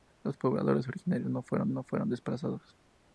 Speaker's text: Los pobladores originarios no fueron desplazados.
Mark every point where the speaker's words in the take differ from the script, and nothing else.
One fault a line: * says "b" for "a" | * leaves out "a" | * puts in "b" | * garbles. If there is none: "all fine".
* puts in "no fueron"